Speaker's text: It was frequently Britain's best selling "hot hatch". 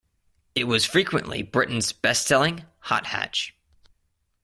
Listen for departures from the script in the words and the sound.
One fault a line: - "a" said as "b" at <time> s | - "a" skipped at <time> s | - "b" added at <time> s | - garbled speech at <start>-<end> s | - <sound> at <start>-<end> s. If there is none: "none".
none